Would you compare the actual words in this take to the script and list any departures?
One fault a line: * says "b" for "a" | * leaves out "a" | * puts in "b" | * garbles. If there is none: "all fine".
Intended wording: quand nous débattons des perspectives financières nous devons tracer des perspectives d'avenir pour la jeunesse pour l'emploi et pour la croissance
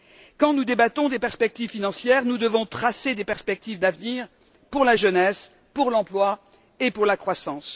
all fine